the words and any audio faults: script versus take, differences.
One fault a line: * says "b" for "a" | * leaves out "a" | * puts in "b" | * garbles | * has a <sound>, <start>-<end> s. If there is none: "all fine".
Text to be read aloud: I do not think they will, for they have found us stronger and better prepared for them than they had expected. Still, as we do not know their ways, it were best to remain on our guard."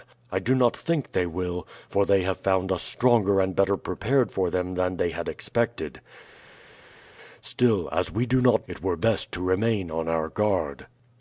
* leaves out "know their ways"